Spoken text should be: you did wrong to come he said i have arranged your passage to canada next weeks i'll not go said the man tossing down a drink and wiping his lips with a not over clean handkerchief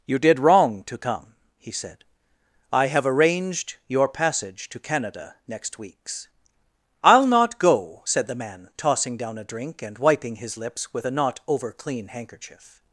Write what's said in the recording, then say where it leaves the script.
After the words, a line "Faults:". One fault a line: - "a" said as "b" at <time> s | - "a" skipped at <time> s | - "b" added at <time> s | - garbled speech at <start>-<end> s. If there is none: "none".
you did wrong to come he said i have arranged your passage to canada next weeks i'll not go said the man tossing down a drink and wiping his lips with a not over clean handkerchief
Faults:
none